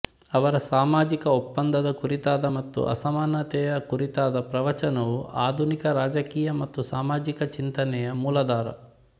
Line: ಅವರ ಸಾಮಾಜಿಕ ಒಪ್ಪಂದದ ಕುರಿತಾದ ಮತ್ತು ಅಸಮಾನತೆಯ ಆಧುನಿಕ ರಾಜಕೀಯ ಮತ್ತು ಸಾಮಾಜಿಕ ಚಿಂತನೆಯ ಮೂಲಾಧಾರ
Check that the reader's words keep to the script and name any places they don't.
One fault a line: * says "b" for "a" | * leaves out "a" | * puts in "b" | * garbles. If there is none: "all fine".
* puts in "ಕುರಿತಾದ ಪ್ರವಚನವು"